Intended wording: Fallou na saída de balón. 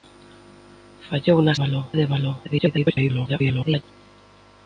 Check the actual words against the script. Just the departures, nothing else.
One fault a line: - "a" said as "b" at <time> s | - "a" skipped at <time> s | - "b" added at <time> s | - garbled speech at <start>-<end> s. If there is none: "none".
- "saída" said as "balón" at 1.6 s
- garbled speech at 2.4-3.8 s